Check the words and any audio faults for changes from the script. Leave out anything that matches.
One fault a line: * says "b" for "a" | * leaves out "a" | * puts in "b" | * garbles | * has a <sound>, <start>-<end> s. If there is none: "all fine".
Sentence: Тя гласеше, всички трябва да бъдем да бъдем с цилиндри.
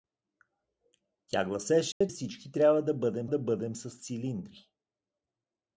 * has a dropout, 1.9-2.0 s